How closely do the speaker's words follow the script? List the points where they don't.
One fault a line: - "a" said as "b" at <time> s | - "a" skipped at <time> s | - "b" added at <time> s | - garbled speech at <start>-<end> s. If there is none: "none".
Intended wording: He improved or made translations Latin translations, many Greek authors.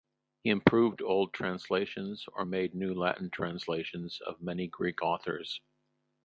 - "old translations" added at 1.0 s
- "translations" said as "new" at 2.7 s
- "of" added at 4.2 s